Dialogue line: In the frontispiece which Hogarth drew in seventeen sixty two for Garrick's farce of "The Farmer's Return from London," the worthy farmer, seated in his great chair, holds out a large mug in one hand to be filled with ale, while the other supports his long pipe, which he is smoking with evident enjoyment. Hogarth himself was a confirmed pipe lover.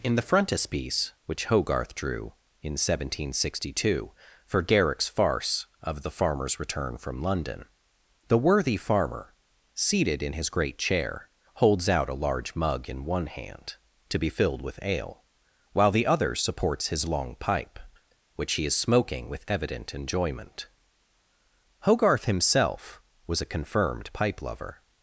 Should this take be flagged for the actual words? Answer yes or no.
no